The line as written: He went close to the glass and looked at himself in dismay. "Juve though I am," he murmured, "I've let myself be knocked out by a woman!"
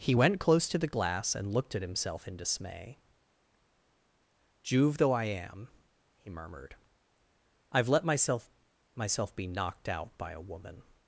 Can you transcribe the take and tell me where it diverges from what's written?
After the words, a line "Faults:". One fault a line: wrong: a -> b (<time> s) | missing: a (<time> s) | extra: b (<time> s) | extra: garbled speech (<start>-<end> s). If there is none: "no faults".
He went close to the glass and looked at himself in dismay. "Juve though I am," he murmured, "I've let myself myself be knocked out by a woman!"
Faults:
extra: myself (8.9 s)